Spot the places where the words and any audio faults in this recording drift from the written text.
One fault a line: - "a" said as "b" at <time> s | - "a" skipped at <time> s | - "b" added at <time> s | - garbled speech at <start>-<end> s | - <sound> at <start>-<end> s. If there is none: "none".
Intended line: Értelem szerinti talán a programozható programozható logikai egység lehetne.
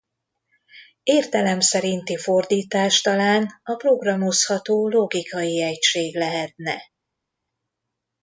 - "fordítás" added at 2.2 s
- "programozható" skipped at 4.9 s